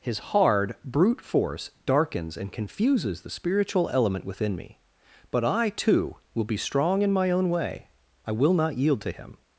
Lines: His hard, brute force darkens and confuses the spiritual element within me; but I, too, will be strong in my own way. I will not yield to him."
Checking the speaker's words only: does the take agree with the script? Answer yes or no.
yes